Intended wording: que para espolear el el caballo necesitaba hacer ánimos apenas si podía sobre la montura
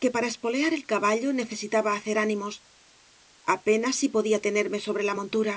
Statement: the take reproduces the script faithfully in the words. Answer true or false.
false